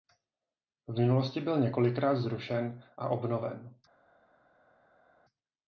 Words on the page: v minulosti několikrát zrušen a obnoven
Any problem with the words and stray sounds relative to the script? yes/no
yes